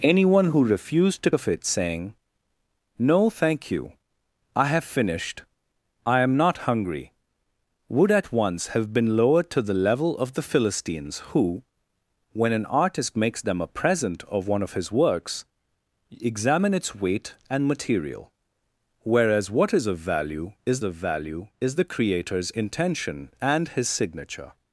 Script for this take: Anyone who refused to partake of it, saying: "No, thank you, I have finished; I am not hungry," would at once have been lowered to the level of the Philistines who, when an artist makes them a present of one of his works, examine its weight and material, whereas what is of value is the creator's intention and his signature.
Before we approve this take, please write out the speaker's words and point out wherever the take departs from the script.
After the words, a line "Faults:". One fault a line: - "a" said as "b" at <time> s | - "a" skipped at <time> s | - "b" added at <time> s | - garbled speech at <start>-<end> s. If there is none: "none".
Anyone who refused to of it, saying: "No, thank you, I have finished; I am not hungry," would at once have been lowered to the level of the Philistines who, when an artist makes them a present of one of his works, examine its weight and material, whereas what is of value is of value is the creator's intention and his signature.
Faults:
- "partake" skipped at 1.3 s
- "of value is" added at 20.8 s